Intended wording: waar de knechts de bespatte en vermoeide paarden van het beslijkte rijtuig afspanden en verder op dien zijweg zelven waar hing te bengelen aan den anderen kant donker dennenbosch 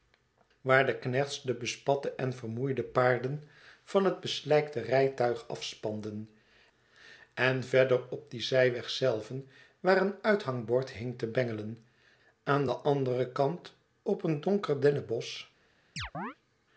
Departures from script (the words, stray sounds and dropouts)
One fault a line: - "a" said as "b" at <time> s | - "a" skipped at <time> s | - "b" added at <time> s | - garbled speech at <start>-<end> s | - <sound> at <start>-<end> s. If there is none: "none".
- "een uithangbord" added at 10.0 s
- "op een" added at 14.0 s
- chirp at 16.0-16.4 s